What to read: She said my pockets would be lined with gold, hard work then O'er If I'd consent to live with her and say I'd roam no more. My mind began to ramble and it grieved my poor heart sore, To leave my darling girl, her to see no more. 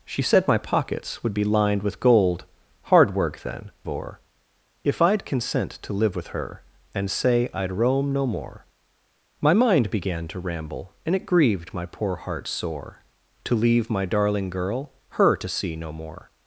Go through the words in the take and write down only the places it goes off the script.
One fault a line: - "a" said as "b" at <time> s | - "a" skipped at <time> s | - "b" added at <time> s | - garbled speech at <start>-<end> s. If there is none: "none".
none